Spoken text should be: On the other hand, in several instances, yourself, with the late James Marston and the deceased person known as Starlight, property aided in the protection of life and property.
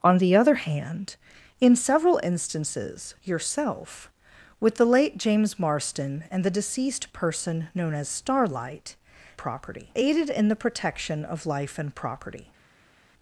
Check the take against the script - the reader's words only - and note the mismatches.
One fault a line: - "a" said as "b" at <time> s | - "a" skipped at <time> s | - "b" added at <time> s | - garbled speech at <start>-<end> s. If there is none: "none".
none